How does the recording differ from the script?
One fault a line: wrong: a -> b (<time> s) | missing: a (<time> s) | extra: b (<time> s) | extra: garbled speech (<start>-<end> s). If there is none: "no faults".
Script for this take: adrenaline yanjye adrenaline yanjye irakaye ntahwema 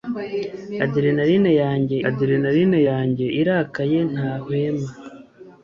no faults